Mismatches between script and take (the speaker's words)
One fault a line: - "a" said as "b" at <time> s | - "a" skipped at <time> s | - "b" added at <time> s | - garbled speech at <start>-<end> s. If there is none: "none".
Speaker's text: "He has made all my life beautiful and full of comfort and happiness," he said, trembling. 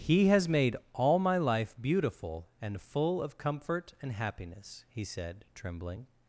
none